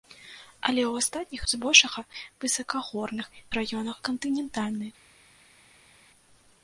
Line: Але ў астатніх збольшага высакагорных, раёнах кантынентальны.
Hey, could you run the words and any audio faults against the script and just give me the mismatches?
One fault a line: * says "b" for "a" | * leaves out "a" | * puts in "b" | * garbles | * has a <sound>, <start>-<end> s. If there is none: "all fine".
all fine